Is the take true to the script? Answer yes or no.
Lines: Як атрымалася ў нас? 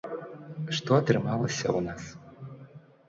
no